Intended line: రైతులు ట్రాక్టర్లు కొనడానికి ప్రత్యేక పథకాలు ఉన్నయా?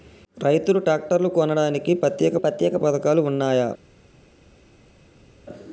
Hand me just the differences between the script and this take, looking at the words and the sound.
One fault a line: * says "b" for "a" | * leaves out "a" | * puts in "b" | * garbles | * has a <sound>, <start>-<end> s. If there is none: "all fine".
* puts in "ప్రత్యేక"